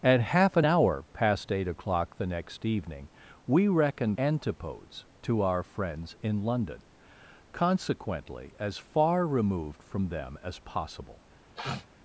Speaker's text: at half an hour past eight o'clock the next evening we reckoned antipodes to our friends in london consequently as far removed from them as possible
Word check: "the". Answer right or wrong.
right